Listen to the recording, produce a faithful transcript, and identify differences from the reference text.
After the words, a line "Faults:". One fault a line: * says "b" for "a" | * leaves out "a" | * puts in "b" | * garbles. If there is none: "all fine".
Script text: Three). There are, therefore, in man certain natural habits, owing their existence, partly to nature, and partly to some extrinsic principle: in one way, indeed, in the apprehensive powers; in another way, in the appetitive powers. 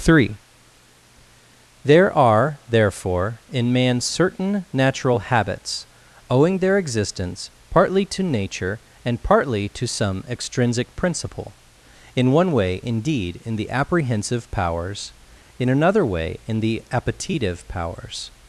Three). There are, therefore, in man certain natural habits, owing their existence, partly to nature, and partly to some extrinsic principle: in one way, indeed, in the apprehensive powers; in another way, in the appetitive powers.
Faults:
all fine